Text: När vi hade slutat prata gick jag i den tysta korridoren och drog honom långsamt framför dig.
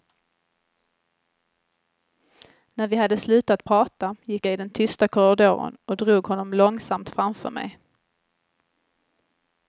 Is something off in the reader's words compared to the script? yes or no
yes